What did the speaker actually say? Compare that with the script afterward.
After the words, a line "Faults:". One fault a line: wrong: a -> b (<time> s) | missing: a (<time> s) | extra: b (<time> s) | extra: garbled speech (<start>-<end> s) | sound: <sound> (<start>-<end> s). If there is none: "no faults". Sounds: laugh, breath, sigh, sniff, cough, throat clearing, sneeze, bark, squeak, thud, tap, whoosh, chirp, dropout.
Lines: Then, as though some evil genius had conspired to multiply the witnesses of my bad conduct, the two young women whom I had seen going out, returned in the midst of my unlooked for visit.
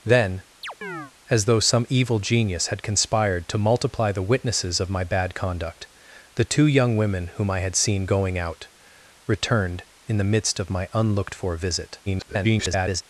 Then, as though some evil genius had conspired to multiply the witnesses of my bad conduct, the two young women whom I had seen going out, returned in the midst of my unlooked for visit. [garbled]
Faults:
sound: chirp (0.6-1.1 s)
extra: garbled speech (12.1-13.0 s)